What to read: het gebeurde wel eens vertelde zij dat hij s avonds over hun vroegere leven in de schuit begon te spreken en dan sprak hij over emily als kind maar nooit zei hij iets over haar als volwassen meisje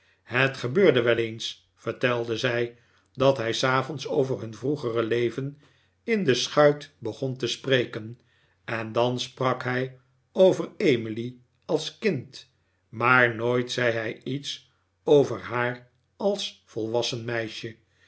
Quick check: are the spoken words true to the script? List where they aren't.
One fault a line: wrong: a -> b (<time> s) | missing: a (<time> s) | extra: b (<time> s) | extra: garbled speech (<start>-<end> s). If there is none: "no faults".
no faults